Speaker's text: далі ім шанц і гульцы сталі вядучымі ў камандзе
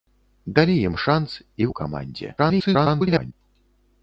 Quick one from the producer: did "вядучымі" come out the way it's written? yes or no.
no